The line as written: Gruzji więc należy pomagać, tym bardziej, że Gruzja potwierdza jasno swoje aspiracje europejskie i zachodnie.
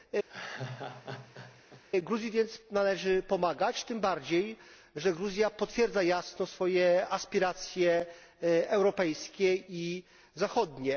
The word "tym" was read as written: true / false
true